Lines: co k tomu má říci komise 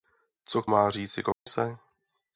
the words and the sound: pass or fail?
fail